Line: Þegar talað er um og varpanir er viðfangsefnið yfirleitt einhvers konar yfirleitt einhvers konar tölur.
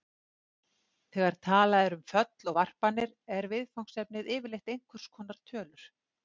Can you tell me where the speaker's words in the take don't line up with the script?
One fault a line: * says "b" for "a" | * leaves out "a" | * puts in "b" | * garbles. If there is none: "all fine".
* puts in "föll"
* leaves out "yfirleitt einhvers konar"